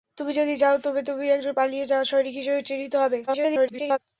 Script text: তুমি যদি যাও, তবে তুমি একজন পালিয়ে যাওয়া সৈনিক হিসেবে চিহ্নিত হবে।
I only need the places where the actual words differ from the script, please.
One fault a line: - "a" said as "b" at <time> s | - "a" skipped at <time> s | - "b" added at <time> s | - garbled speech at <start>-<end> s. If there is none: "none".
- garbled speech at 3.3-4.0 s